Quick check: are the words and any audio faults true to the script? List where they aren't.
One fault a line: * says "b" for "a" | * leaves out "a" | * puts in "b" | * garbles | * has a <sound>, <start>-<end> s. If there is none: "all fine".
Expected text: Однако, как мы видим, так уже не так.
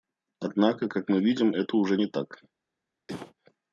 * says "это" for "так"
* has a cough, 3.1-3.3 s